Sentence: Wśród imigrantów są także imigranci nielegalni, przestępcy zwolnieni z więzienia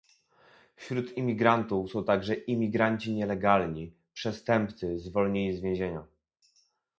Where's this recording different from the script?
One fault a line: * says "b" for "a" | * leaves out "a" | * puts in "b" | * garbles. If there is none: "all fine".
all fine